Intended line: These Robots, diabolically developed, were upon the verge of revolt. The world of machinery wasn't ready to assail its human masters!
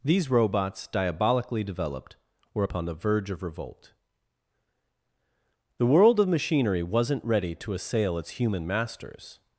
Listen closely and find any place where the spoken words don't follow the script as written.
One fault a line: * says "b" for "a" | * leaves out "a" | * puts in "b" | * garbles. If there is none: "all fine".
all fine